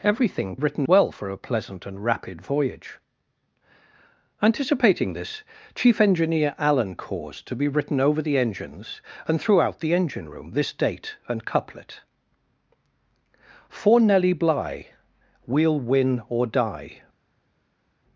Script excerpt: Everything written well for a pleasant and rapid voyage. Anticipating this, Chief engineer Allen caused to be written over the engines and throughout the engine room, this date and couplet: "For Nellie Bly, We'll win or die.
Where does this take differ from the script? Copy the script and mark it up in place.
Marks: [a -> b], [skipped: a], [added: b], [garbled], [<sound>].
Everything written well for a pleasant and rapid voyage. Anticipating this, Chief engineer Allen caused to be written over the engines and throughout the engine room, this date and couplet: "For Nellie Bly, We'll win or die.